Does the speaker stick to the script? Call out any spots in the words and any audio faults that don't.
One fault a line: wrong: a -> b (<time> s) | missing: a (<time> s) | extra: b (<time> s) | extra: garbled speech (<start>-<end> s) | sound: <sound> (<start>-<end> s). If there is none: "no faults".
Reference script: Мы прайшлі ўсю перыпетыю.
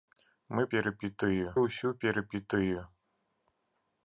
wrong: прайшлі -> перыпетыю (0.7 s)